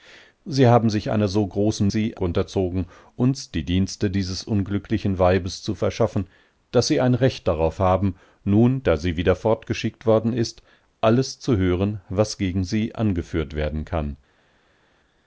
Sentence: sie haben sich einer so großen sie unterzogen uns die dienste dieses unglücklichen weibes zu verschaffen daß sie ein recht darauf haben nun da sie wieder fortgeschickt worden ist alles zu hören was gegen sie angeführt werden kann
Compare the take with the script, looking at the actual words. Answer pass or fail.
pass